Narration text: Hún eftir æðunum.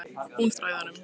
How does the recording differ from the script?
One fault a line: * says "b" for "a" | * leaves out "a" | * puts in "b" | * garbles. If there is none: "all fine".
all fine